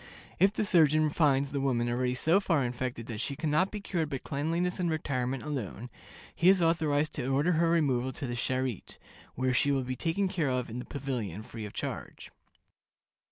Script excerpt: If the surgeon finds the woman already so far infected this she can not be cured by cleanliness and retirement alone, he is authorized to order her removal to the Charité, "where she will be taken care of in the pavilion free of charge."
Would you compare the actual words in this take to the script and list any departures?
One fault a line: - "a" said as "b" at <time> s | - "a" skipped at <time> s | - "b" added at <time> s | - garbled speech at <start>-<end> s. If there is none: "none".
- "this" said as "that" at 3.1 s